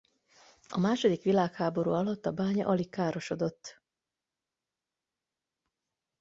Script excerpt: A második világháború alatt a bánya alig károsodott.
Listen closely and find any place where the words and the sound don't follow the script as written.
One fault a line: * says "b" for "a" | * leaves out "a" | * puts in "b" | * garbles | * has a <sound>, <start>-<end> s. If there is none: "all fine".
all fine